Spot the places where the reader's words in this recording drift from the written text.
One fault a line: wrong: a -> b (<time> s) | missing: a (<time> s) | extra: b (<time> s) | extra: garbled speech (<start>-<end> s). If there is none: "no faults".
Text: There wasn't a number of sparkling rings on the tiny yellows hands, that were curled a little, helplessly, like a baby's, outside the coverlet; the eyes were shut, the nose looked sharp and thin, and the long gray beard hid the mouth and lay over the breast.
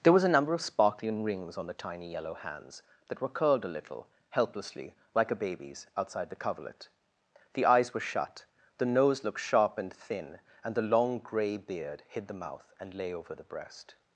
wrong: wasn't -> was (0.1 s)
wrong: yellows -> yellow (2.1 s)